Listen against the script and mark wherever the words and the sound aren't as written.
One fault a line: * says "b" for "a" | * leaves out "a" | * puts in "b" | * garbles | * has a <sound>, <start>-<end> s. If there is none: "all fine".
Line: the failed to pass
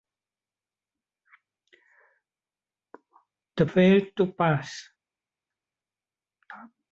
all fine